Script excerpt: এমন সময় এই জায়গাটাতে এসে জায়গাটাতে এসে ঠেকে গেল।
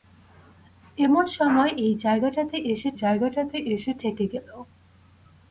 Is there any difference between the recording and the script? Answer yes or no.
no